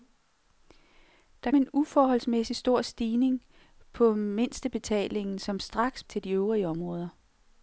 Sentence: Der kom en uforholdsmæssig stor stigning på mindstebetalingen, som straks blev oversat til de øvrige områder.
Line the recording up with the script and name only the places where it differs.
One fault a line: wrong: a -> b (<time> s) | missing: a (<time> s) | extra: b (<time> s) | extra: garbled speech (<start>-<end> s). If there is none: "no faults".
missing: kom (1.5 s)
missing: blev oversat (6.0 s)